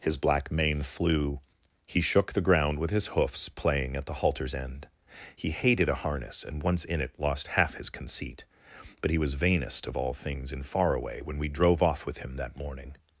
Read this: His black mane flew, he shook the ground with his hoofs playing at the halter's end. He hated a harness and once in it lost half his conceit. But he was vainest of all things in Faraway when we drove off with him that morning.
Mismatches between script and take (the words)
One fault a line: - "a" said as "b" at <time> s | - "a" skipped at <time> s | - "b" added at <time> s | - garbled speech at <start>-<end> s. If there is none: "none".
none